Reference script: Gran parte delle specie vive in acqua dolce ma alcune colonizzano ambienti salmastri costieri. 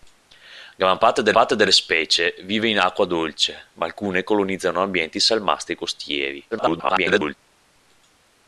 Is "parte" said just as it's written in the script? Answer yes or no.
yes